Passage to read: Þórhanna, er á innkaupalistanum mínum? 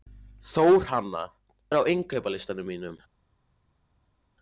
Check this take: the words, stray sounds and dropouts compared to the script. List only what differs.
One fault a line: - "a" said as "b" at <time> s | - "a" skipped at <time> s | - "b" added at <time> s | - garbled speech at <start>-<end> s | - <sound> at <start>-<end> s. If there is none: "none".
none